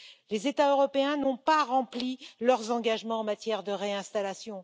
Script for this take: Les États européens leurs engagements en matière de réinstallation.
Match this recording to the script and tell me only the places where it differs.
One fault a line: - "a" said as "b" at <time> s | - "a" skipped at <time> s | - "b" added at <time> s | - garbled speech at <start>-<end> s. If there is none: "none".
- "n'ont pas rempli" added at 1.2 s